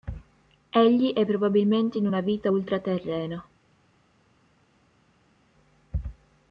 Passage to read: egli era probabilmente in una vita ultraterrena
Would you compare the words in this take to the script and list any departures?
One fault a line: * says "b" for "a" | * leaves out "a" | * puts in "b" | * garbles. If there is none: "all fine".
* says "è" for "era"